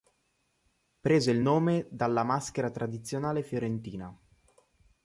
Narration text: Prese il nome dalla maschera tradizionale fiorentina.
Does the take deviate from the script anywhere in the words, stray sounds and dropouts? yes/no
no